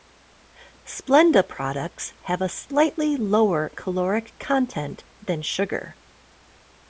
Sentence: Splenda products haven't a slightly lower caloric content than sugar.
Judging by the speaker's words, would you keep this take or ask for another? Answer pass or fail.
fail